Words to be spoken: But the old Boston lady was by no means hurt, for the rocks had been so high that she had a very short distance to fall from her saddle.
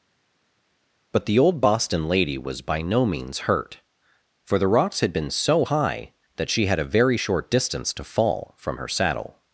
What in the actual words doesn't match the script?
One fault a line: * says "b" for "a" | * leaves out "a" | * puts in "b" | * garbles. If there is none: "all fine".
all fine